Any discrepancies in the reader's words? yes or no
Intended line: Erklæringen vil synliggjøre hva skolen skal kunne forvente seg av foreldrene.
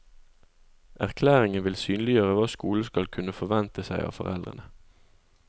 no